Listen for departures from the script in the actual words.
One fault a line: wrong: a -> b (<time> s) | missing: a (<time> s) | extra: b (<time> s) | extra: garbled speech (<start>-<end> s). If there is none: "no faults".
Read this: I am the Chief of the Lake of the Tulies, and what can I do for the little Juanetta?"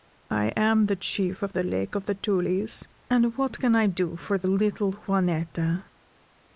no faults